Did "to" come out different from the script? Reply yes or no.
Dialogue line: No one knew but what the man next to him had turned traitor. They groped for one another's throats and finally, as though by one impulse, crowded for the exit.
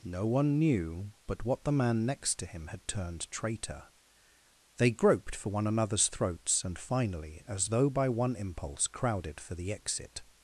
no